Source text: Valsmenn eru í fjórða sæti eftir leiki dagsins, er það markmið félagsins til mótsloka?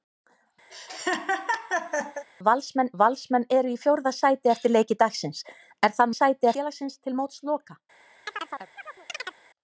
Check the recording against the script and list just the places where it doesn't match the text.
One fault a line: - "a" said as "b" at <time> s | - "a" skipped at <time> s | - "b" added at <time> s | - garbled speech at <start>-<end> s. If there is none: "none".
- "valsmenn" added at 3.0 s
- "markmið" said as "sæti" at 6.2 s